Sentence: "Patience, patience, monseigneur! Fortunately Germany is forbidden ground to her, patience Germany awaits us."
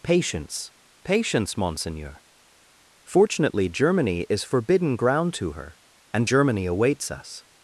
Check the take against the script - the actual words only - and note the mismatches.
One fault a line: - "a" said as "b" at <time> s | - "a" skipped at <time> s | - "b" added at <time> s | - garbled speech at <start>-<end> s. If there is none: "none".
- "patience" said as "and" at 6.1 s